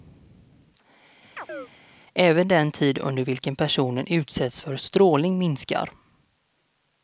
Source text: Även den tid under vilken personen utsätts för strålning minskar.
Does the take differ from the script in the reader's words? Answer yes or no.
no